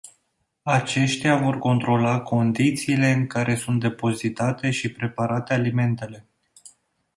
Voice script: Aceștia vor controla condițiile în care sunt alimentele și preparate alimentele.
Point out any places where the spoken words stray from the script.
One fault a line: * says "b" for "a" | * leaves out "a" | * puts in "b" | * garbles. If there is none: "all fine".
* says "depozitate" for "alimentele"